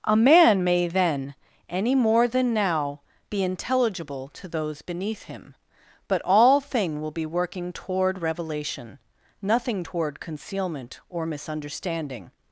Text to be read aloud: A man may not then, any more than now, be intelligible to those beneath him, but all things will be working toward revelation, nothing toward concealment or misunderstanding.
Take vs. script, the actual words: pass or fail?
fail